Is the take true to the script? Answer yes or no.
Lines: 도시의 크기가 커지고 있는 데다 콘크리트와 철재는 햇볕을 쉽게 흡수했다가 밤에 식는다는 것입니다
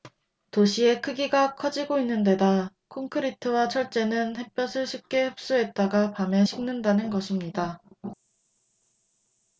yes